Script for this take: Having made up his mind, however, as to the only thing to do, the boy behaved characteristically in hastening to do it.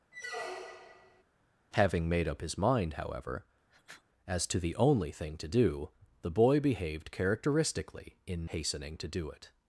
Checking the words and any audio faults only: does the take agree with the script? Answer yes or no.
no